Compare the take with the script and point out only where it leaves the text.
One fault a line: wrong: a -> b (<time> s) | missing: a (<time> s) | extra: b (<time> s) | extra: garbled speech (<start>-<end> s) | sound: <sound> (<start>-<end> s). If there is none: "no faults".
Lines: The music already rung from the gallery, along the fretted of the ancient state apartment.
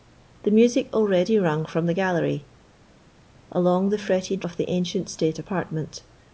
no faults